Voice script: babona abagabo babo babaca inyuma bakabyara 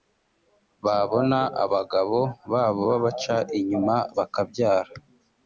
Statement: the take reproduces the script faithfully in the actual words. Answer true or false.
true